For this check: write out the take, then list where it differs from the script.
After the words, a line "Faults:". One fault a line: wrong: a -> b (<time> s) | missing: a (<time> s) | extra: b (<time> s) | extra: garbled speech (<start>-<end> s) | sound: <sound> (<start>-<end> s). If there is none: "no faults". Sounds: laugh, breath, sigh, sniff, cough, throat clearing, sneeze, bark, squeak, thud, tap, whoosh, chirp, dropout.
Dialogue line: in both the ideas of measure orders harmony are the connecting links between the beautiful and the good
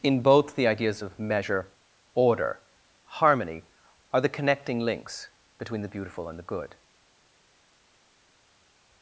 in both the ideas of measure order harmony are the connecting links between the beautiful and the good
Faults:
wrong: orders -> order (2.1 s)